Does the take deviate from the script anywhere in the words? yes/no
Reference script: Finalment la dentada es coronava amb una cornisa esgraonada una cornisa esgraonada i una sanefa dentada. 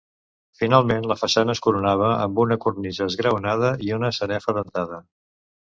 yes